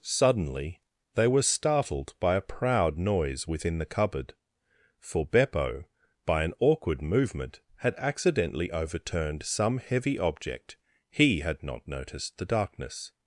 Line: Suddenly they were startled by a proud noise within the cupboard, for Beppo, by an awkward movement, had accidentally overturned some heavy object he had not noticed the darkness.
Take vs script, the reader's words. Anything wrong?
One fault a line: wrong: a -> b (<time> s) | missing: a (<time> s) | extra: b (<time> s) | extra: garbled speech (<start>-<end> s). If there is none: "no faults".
no faults